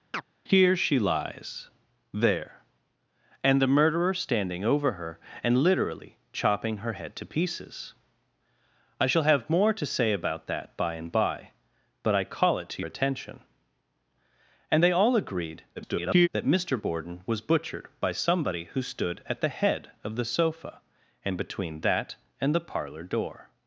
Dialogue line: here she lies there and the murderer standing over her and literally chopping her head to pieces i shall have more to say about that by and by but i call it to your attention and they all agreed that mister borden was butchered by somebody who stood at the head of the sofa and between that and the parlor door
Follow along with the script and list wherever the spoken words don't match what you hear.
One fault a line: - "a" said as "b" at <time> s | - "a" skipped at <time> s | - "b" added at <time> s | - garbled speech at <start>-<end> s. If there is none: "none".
- "your" skipped at 12.8 s
- garbled speech at 15.8-16.3 s